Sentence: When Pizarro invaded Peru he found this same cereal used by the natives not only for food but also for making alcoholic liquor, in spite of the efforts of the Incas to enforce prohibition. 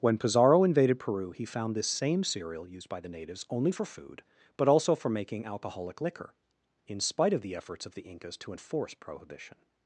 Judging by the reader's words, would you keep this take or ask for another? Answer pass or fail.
fail